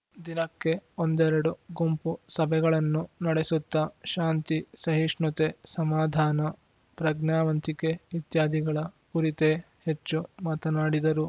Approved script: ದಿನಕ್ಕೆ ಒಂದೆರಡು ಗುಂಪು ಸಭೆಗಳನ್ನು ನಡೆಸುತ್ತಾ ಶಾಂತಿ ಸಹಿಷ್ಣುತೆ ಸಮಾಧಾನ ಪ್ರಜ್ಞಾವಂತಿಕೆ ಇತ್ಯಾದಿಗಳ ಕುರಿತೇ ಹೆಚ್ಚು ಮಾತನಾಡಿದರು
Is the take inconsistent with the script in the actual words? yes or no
no